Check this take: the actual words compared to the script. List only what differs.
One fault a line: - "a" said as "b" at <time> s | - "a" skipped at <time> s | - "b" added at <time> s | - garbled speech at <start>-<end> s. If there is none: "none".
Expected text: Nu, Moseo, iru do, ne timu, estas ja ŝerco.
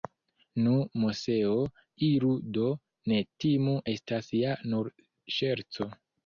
- "nur" added at 4.8 s